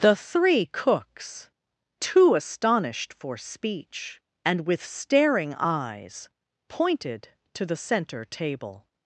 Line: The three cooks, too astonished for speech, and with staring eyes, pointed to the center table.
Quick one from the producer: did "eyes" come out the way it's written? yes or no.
yes